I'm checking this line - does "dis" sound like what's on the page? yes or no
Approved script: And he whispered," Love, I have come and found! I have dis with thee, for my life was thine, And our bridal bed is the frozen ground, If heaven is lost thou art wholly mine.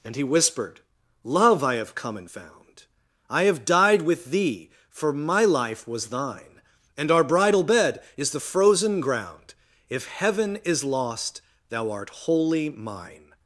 no